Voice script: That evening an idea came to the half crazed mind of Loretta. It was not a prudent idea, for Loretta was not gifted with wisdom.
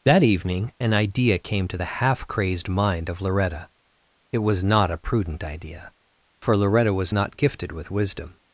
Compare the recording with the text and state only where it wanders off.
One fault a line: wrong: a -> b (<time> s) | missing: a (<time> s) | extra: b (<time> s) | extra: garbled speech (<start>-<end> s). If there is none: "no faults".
no faults